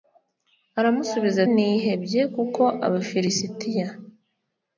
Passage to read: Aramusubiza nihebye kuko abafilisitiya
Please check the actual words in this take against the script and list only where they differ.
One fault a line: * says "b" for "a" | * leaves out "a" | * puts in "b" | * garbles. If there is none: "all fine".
all fine